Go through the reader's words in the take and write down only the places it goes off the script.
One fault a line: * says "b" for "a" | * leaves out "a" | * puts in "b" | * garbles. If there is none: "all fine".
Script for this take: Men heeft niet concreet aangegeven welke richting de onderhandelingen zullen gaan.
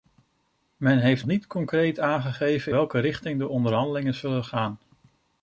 all fine